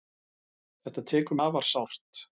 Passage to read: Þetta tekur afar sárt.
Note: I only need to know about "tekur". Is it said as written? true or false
true